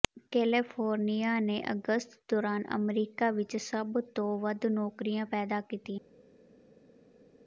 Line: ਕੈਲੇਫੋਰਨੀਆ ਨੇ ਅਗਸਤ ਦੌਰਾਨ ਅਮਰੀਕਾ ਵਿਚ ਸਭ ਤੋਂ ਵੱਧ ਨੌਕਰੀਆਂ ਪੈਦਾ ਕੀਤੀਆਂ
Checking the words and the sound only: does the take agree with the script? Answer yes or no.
yes